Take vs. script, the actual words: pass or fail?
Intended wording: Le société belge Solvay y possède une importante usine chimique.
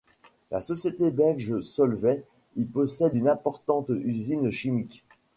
fail